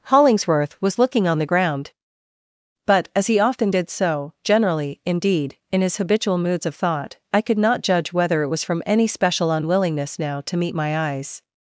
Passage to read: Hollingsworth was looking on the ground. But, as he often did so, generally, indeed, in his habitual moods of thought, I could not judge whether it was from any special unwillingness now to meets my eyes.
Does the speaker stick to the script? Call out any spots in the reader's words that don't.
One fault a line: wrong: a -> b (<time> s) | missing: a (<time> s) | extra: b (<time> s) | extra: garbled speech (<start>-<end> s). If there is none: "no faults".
wrong: meets -> meet (10.6 s)